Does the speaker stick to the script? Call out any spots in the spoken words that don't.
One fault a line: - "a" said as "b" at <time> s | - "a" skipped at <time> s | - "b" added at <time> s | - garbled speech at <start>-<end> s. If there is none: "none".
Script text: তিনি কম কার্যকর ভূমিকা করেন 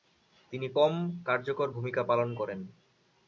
- "পালন" added at 2.0 s